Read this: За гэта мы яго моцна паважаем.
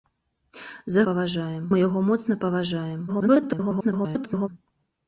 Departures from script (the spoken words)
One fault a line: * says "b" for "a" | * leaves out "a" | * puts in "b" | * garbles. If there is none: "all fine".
* says "паважаем" for "гэта"
* garbles